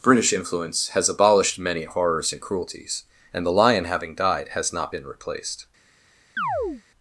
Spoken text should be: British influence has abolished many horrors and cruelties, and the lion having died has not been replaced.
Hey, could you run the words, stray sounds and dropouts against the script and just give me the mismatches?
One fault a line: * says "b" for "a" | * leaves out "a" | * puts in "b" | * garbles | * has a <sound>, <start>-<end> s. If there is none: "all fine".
* has a chirp, 6.4-6.8 s